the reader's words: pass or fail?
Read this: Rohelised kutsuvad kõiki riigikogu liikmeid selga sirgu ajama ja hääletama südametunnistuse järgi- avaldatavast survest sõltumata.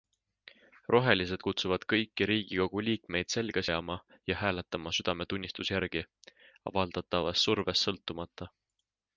fail